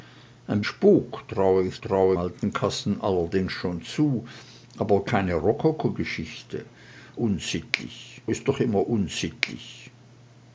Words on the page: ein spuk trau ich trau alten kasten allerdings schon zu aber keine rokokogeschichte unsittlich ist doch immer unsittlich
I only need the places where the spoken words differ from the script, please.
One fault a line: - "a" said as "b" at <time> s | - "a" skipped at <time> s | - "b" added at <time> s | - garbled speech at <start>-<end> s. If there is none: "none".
none